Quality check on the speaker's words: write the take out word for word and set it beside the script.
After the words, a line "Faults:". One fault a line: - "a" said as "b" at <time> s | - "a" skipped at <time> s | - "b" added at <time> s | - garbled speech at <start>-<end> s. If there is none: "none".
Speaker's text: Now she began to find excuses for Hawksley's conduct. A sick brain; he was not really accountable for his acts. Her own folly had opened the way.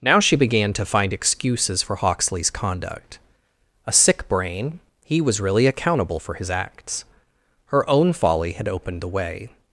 Now she began to find excuses for Hawksley's conduct. A sick brain; he was really accountable for his acts. Her own folly had opened the way.
Faults:
- "not" skipped at 5.4 s